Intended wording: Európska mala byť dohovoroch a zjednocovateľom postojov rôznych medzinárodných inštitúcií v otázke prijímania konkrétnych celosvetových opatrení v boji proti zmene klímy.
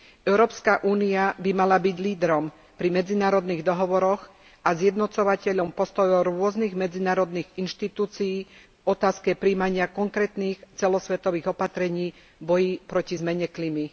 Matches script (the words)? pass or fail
fail